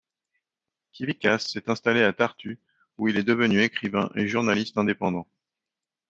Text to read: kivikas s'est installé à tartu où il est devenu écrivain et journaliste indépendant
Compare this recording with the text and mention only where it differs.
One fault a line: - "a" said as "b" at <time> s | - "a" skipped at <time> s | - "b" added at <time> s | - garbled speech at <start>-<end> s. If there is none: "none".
none